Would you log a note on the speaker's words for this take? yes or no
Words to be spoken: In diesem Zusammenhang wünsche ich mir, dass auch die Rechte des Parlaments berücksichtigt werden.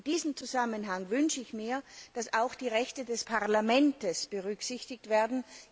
no